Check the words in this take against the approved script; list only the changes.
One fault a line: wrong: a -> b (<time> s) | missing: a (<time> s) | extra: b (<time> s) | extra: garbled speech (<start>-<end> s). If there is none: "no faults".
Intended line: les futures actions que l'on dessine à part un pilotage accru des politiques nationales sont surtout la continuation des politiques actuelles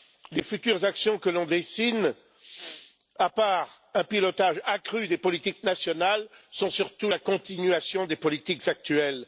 no faults